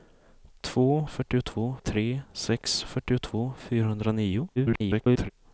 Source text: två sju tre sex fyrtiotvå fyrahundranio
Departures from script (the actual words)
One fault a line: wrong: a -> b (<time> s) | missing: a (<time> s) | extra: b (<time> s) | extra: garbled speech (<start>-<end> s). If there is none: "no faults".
wrong: sju -> fyrtiotvå (1.1 s)
extra: garbled speech (4.6-5.3 s)